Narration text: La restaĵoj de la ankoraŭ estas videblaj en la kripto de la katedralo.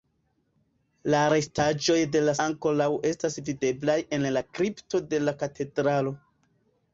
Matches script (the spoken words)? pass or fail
pass